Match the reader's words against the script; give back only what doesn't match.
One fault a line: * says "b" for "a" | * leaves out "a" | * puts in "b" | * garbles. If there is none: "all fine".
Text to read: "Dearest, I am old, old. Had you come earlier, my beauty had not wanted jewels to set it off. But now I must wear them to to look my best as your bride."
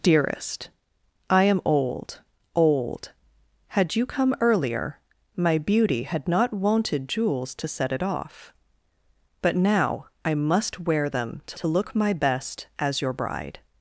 all fine